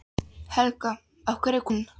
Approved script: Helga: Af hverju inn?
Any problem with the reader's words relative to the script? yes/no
no